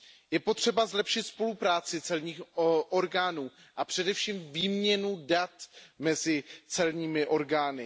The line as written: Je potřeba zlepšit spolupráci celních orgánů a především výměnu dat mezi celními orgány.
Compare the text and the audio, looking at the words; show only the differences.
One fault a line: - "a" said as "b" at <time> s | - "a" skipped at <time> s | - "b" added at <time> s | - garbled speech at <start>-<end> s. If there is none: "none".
none